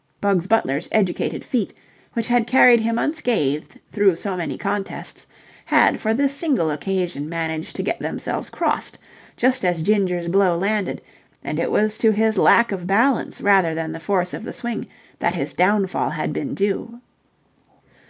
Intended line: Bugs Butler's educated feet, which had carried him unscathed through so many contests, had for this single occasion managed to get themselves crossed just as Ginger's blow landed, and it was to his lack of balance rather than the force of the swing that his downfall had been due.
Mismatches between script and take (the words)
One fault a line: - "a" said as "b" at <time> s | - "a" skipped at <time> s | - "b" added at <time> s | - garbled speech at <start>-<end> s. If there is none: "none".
none